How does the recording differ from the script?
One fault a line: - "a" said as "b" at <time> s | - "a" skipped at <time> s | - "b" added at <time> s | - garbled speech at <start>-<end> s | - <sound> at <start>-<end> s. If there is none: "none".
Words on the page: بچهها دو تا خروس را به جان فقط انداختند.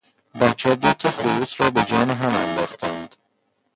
- "فقط" said as "هم" at 2.1 s